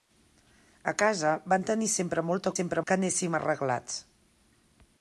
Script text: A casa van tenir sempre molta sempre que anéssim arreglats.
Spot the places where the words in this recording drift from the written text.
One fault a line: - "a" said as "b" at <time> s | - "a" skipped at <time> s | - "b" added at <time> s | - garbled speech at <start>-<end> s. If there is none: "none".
none